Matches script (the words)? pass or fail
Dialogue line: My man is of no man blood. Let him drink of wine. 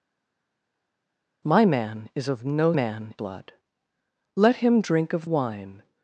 pass